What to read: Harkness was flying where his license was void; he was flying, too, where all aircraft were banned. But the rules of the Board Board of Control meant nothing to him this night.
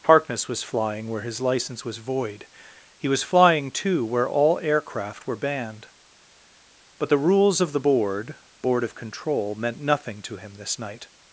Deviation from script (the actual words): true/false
false